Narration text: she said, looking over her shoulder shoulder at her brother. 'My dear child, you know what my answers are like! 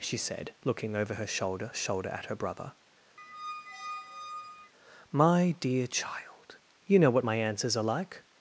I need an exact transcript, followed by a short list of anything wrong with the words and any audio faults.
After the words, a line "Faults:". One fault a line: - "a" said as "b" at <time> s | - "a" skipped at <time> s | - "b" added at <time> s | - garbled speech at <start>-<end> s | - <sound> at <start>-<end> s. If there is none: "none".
she said, looking over her shoulder shoulder at her brother. 'My dear child, you know what my answers are like!
Faults:
- squeak at 3.2-4.7 s